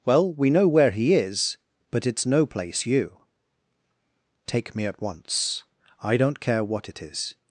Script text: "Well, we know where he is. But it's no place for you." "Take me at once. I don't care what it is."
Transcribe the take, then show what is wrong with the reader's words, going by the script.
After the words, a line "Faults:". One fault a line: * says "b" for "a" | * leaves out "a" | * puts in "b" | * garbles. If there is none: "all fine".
"Well, we know where he is. But it's no place you." "Take me at once. I don't care what it is."
Faults:
* leaves out "for"